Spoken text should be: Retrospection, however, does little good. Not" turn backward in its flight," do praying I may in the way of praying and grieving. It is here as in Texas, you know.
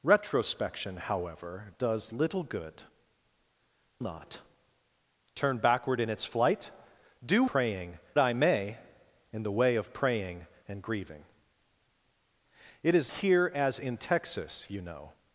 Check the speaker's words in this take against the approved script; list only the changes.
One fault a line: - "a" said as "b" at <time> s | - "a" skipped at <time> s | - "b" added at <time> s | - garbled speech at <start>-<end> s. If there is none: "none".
none